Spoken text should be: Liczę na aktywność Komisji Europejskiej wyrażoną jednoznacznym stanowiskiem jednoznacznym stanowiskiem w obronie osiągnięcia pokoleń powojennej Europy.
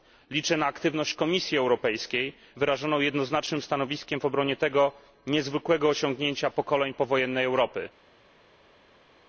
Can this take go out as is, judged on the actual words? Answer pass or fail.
fail